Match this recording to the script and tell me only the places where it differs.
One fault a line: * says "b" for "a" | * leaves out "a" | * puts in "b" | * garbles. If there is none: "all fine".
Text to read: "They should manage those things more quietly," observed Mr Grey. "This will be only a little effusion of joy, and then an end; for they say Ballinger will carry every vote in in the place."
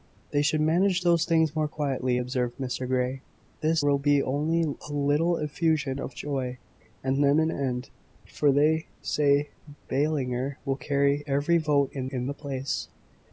all fine